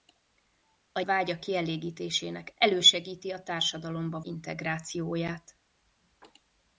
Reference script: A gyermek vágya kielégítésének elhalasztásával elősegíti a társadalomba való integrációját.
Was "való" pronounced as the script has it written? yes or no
no